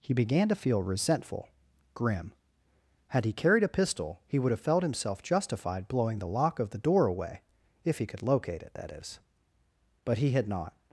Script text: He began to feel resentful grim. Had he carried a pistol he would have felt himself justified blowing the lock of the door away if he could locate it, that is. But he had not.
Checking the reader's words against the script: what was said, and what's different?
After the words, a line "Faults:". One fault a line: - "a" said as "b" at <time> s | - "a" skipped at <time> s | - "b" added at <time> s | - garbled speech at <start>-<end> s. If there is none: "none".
He began to feel resentful grim. Had he carried a pistol he would have felt himself justified blowing the lock of the door away if he could locate it, that is. But he had not.
Faults:
none